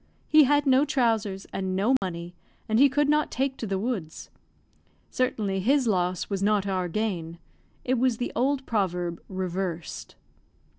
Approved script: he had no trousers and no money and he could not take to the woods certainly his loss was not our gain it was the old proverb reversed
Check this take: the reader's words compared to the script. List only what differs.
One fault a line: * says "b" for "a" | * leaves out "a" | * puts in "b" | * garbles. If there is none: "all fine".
all fine